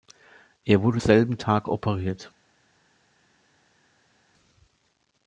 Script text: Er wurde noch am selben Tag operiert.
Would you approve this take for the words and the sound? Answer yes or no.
no